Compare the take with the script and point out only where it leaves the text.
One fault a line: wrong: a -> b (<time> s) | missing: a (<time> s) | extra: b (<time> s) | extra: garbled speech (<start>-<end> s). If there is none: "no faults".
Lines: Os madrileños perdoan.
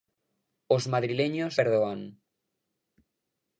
no faults